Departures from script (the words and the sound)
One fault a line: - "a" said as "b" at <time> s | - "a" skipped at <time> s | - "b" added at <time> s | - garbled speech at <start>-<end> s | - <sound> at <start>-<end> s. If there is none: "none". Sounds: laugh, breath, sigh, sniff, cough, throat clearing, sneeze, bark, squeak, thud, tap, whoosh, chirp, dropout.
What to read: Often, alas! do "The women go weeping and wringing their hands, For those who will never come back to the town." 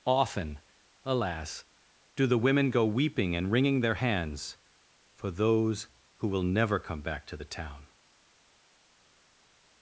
none